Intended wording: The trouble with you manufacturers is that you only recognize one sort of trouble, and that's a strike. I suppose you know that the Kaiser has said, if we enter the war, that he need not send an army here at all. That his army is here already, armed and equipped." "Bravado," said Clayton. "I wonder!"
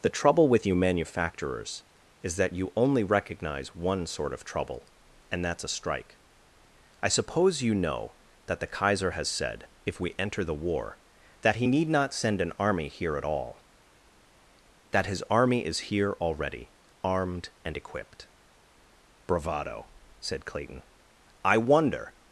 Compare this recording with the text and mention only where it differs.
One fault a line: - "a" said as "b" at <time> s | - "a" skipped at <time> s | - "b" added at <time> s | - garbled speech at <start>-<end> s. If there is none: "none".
none